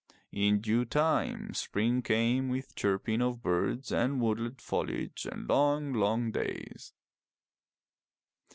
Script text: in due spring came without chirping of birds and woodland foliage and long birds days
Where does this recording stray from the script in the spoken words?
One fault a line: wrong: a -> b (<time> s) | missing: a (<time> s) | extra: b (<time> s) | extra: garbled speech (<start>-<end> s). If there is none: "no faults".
extra: time (0.8 s)
wrong: without -> with (2.5 s)
wrong: birds -> long (5.9 s)